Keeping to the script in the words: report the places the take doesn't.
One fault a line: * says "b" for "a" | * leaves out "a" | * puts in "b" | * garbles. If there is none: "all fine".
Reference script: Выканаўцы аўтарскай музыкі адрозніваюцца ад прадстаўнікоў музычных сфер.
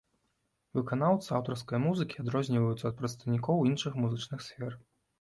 * puts in "іншых"